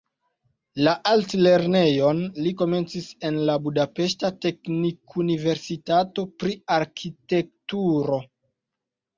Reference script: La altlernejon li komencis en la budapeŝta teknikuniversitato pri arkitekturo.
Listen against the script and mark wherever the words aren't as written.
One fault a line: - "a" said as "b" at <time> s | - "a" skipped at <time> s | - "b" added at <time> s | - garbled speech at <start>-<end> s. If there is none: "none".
none